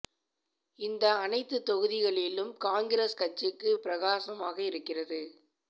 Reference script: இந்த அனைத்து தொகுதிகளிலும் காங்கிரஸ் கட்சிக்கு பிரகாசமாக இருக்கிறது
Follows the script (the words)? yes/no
yes